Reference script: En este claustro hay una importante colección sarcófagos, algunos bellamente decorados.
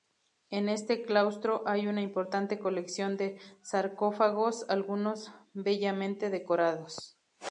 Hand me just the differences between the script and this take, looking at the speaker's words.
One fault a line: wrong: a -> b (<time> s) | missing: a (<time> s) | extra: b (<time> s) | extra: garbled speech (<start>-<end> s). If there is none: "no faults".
extra: de (3.2 s)